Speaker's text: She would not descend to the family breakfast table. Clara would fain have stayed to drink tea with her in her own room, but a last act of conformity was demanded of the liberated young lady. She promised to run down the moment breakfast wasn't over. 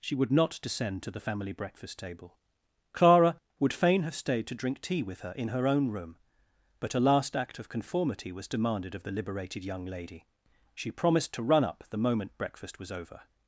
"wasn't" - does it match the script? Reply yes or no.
no